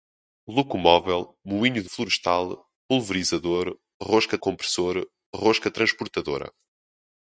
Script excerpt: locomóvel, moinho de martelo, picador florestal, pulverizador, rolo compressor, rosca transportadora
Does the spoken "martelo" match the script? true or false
false